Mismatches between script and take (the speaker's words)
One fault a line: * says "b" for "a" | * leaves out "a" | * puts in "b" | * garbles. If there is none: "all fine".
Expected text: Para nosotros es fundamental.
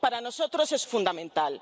all fine